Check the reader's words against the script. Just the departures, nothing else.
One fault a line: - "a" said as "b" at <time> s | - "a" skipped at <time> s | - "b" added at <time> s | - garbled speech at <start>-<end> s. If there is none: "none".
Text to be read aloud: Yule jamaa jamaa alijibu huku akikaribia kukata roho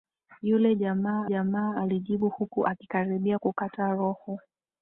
none